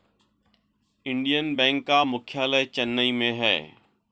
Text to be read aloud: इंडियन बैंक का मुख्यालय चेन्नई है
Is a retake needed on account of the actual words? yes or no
yes